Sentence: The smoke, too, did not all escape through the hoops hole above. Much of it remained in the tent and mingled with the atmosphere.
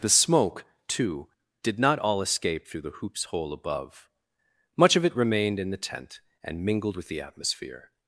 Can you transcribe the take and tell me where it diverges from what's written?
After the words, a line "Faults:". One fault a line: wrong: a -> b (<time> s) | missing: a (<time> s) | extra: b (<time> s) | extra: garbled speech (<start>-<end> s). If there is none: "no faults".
The smoke, too, did not all escape through the hoops hole above. Much of it remained in the tent and mingled with the atmosphere.
Faults:
no faults